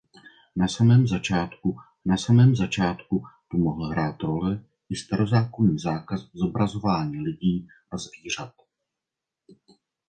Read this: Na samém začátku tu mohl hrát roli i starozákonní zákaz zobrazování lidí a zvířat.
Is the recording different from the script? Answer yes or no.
yes